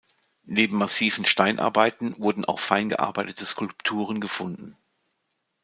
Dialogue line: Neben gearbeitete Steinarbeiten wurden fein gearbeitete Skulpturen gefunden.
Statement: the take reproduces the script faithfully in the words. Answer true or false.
false